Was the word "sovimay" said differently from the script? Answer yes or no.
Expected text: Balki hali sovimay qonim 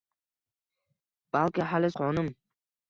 yes